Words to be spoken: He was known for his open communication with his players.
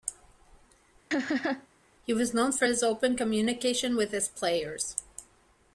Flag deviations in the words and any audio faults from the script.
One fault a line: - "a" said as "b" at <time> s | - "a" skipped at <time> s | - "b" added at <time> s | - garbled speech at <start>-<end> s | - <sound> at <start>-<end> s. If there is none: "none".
- laugh at 1.1-1.7 s